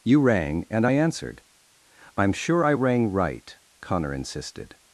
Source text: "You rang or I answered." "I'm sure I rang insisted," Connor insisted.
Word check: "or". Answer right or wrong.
wrong